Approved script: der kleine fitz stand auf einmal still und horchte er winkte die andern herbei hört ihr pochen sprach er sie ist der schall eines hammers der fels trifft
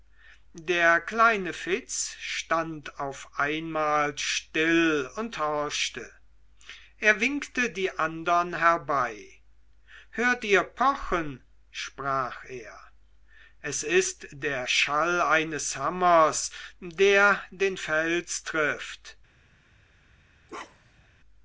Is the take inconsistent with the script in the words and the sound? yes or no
yes